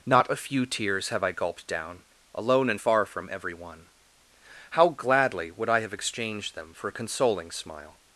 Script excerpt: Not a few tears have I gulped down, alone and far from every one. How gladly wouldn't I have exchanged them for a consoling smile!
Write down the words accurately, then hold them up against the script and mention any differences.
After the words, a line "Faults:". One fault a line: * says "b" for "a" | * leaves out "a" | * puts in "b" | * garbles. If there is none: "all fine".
Not a few tears have I gulped down, alone and far from every one. How gladly would I have exchanged them for a consoling smile!
Faults:
* says "would" for "wouldn't"